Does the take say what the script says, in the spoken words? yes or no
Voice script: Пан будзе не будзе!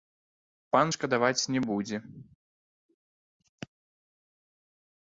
no